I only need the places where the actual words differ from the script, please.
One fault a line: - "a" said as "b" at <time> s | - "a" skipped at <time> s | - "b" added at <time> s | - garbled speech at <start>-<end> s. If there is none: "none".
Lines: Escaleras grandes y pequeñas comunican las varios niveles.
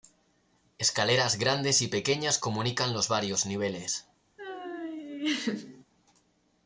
- "las" said as "los" at 2.9 s